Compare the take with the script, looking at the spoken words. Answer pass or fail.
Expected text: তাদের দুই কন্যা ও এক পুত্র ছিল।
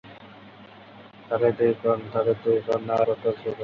fail